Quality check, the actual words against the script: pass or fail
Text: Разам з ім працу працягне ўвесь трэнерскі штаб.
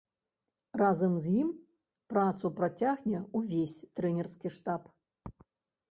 pass